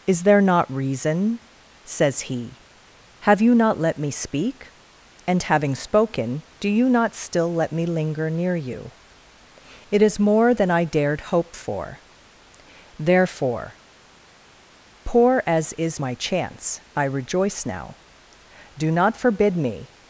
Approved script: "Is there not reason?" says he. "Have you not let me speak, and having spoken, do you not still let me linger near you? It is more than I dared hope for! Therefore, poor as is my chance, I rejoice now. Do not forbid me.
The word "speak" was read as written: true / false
true